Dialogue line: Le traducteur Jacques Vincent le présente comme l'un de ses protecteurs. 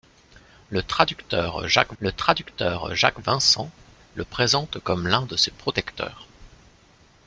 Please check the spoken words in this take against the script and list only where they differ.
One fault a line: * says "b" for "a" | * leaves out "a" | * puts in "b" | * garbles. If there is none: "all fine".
* puts in "le traducteur Jacques"